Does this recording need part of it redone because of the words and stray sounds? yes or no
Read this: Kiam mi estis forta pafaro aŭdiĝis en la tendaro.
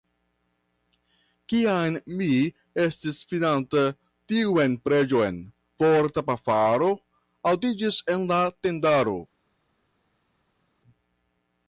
yes